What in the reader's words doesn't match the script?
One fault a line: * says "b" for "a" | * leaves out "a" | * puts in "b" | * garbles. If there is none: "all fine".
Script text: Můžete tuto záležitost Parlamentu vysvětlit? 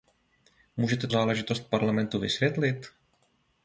* leaves out "tuto"